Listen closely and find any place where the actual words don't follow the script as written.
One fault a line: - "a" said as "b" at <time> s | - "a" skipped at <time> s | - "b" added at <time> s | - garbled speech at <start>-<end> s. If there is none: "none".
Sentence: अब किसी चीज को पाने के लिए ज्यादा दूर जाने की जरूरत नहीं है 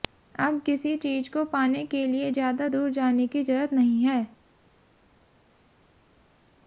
none